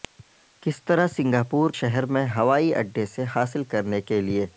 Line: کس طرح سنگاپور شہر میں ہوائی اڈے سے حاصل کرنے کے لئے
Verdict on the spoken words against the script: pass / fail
pass